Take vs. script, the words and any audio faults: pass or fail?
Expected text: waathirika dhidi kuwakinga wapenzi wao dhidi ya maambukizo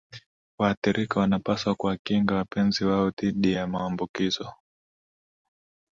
fail